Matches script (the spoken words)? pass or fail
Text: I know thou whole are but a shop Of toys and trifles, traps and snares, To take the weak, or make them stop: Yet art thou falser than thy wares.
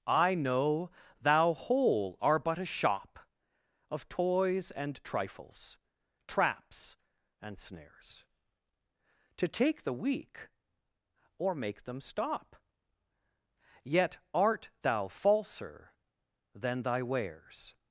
pass